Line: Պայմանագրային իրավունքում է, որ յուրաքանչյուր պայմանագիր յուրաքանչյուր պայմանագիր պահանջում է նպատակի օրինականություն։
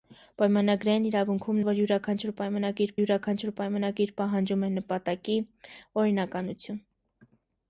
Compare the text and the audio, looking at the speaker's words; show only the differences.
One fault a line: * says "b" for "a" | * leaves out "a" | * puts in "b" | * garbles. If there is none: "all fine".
all fine